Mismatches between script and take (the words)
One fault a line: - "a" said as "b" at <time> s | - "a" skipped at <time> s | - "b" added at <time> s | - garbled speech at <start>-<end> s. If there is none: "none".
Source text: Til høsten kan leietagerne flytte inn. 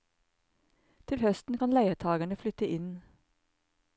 none